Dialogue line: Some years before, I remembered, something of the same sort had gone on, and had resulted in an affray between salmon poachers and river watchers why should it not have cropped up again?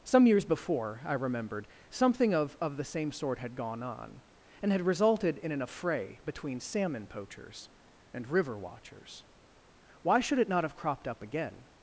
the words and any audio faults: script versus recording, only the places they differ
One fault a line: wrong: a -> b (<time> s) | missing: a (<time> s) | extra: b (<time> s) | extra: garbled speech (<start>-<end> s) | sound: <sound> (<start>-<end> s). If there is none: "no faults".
extra: of (2.6 s)